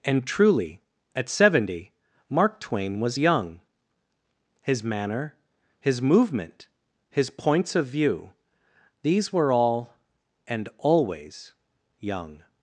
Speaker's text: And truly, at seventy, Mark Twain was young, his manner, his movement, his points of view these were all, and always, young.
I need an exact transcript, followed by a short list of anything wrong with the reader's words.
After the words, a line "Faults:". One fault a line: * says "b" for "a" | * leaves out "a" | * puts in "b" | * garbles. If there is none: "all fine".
And truly, at seventy, Mark Twain was young, his manner, his movement, his points of view these were all, and always, young.
Faults:
all fine